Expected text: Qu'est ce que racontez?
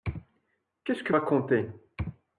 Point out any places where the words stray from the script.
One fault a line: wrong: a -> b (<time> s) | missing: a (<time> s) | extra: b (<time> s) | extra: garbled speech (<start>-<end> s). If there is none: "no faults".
no faults